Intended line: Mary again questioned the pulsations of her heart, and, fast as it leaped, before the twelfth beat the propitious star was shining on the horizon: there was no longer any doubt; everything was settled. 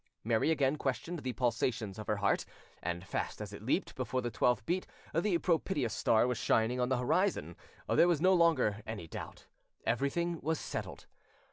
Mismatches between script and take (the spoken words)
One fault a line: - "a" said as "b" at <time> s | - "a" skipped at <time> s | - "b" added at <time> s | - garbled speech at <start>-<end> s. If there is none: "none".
none